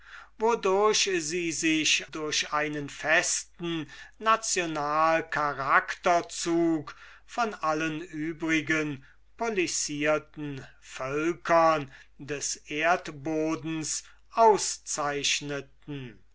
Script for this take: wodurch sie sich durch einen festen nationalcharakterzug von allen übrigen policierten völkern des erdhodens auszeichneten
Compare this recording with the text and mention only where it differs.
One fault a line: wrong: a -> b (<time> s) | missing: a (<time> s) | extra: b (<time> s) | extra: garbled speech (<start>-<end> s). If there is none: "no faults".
no faults